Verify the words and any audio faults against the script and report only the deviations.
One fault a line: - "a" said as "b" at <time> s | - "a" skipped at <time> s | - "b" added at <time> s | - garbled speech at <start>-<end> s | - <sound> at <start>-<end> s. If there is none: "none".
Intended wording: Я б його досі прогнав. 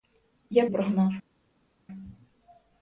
- "його досі" skipped at 0.7 s